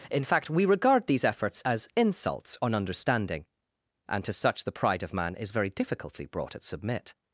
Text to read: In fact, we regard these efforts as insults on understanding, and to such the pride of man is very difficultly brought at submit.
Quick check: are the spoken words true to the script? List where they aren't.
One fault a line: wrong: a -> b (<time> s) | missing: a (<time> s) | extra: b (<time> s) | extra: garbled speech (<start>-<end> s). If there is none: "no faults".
no faults